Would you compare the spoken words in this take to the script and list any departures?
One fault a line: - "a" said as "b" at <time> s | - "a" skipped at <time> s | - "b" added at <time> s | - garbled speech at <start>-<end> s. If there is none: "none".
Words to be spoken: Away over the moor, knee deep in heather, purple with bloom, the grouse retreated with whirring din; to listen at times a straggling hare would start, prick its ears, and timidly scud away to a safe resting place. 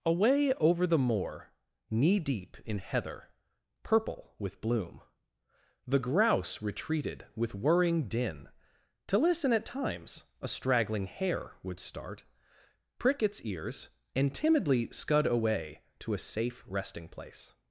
none